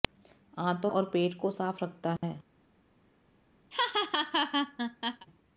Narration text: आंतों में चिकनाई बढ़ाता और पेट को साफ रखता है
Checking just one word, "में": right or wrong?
wrong